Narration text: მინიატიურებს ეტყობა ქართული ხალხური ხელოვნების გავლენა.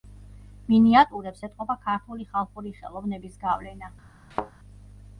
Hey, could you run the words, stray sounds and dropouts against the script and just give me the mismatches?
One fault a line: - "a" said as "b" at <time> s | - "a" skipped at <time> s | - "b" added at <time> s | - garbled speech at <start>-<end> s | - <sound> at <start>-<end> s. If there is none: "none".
- thud at 4.3-4.5 s